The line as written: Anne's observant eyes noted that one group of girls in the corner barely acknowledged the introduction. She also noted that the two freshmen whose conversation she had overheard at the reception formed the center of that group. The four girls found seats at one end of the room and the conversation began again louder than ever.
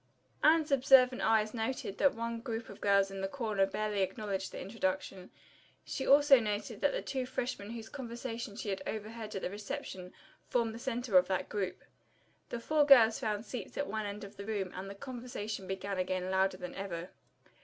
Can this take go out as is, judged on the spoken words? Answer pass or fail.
pass